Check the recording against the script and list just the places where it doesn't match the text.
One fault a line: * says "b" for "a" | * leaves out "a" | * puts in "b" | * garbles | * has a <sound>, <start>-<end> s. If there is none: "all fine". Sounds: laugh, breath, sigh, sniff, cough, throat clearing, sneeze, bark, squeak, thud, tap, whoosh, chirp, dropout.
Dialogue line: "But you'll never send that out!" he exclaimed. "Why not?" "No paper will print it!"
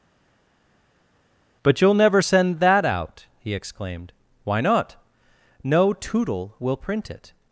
* says "tootle" for "paper"